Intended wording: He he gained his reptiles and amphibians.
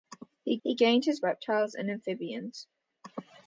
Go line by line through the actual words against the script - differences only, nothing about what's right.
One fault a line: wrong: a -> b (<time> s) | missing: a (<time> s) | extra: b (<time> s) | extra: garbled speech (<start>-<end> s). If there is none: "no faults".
no faults